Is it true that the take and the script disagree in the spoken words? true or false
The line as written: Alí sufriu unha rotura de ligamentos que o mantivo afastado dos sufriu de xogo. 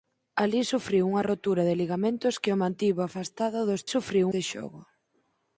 false